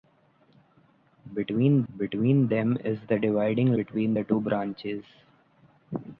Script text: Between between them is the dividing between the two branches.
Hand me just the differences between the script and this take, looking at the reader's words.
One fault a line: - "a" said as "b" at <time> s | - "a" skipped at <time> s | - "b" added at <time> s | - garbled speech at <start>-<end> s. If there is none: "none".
none